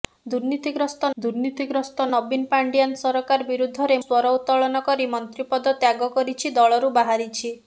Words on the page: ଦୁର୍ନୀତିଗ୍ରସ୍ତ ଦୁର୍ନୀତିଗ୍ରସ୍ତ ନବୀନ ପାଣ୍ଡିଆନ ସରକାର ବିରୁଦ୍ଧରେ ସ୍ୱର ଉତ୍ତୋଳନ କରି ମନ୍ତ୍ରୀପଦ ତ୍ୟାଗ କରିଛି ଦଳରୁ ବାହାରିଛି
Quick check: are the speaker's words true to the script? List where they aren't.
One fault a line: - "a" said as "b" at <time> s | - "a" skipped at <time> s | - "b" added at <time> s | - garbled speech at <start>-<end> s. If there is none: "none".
none